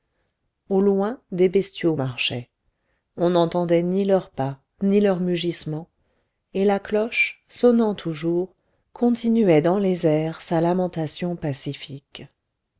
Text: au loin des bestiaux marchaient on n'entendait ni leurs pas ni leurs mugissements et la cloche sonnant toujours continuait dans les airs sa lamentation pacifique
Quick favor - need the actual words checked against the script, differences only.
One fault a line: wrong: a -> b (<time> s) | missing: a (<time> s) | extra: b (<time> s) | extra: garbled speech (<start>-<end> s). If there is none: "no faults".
no faults